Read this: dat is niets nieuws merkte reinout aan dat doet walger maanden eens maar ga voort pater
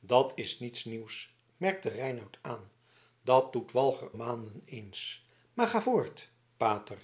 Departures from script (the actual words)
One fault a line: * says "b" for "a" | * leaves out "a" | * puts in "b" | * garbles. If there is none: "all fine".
all fine